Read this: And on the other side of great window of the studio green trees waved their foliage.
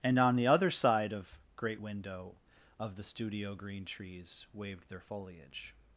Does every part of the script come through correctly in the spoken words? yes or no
yes